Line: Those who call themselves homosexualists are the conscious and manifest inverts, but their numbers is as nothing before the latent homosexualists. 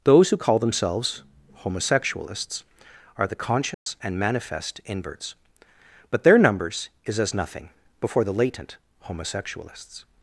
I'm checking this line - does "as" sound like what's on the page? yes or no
yes